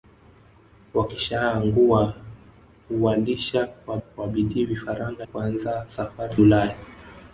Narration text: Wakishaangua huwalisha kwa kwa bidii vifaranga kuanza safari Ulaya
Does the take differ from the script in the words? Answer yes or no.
no